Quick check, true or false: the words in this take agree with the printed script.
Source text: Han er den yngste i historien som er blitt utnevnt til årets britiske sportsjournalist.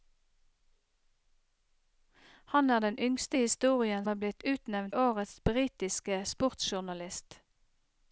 false